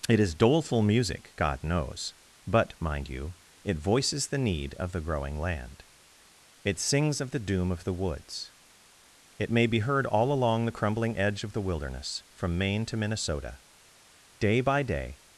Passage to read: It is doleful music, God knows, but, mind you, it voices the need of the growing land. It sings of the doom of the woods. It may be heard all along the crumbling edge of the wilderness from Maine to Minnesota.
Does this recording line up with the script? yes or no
no